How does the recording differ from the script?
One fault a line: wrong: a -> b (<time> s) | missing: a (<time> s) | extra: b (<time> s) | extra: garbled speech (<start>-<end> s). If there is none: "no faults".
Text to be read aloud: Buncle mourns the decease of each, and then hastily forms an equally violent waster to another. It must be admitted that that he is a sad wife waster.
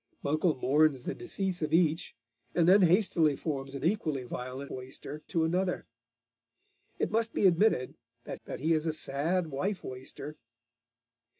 no faults